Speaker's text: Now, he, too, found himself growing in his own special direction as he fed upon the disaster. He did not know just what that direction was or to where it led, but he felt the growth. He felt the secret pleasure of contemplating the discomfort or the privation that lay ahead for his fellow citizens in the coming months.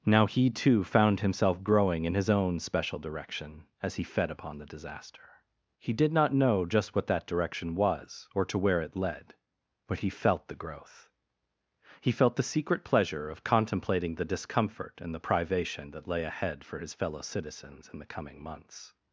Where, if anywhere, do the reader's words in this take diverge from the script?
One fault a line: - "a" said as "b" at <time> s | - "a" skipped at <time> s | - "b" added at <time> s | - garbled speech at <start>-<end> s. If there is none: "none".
- "or" said as "and" at 15.0 s